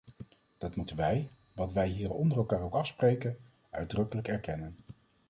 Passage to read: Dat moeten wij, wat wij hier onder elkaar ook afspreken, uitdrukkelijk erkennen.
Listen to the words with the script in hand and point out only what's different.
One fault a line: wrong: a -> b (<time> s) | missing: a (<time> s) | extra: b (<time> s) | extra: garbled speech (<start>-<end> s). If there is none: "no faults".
no faults